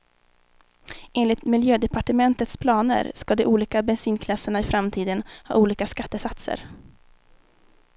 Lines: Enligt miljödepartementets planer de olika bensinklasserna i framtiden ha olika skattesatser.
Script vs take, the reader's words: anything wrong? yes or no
yes